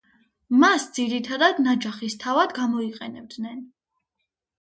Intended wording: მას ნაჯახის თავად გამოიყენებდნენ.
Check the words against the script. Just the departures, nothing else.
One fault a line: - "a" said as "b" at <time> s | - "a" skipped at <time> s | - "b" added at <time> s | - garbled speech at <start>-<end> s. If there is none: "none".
- "ძირითადად" added at 1.0 s